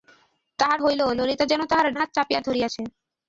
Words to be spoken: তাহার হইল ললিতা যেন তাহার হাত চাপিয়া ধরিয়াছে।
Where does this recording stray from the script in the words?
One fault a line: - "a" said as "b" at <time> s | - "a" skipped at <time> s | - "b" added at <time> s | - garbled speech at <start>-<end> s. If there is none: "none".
none